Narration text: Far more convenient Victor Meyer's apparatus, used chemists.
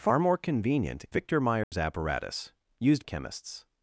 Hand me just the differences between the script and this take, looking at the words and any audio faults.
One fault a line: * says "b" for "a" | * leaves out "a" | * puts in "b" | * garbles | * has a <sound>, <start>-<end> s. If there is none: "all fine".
* has a dropout, 1.6-1.7 s